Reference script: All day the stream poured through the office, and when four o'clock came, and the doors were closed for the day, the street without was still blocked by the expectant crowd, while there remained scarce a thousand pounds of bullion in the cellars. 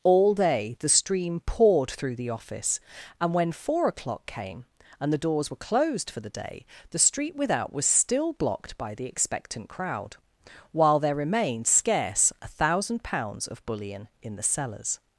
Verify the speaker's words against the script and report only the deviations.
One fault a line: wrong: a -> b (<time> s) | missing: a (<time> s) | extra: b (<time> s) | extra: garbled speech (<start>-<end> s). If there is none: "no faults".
no faults